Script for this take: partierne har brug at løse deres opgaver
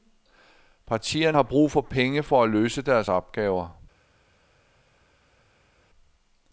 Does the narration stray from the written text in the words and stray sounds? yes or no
yes